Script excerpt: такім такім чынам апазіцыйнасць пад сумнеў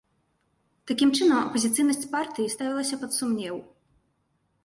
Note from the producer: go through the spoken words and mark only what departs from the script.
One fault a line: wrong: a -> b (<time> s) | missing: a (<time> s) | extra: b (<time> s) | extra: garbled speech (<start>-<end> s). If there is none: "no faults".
missing: такім (1.1 s)
extra: партыі ставілася (2.1 s)